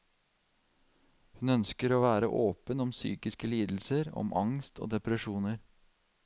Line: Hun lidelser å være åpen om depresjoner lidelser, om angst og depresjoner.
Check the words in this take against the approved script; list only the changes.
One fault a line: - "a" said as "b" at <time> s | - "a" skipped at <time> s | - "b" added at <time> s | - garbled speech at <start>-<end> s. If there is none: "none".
- "lidelser" said as "ønsker" at 1.6 s
- "depresjoner" said as "psykiske" at 3.0 s